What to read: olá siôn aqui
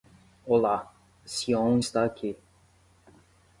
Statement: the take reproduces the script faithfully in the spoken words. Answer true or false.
false